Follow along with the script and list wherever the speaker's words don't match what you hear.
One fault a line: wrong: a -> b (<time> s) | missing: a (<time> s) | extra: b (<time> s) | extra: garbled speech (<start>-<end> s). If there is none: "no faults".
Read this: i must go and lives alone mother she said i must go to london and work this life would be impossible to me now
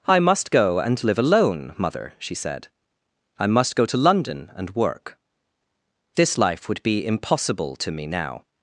wrong: lives -> live (1.0 s)